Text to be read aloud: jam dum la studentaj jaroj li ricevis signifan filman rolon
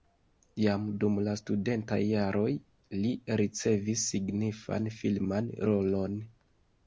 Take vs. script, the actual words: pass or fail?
pass